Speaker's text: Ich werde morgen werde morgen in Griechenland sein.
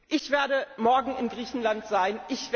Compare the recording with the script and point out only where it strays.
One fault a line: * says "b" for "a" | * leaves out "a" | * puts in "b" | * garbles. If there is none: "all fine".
* leaves out "werde morgen"